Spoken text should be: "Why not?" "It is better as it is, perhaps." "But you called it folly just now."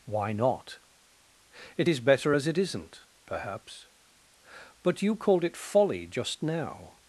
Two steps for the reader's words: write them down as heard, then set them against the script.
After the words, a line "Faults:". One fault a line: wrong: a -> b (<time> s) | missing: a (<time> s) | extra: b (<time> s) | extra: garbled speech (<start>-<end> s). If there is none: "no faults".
"Why not?" "It is better as it isn't, perhaps." "But you called it folly just now."
Faults:
wrong: is -> isn't (2.6 s)